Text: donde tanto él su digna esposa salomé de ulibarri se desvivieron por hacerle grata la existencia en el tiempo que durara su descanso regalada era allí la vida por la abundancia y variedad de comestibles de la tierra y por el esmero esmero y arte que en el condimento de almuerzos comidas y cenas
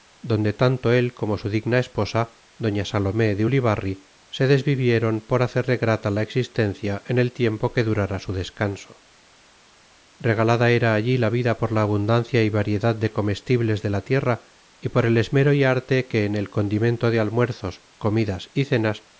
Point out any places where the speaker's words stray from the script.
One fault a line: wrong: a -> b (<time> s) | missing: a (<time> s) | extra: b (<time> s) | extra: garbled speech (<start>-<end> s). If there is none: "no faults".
extra: como (1.1 s)
extra: doña (2.6 s)
missing: esmero (15.5 s)